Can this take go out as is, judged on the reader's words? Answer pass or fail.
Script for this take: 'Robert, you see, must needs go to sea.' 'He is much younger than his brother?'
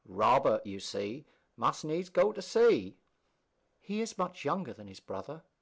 pass